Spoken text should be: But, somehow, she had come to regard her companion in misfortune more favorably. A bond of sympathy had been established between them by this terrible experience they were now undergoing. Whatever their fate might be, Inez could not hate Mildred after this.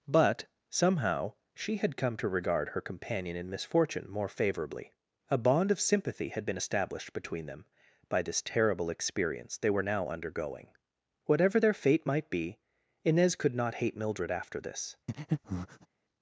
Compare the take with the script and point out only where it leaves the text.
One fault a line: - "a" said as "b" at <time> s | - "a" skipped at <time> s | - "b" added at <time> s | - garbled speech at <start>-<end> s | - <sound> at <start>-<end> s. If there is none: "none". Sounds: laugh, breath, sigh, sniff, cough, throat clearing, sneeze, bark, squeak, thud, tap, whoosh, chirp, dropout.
- breath at 15.1-15.9 s